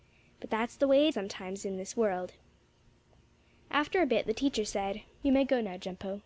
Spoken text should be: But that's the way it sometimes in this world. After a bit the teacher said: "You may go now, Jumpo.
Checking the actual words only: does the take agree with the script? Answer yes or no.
yes